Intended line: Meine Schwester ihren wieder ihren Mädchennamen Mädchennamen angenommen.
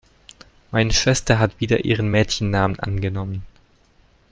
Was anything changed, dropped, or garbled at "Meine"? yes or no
no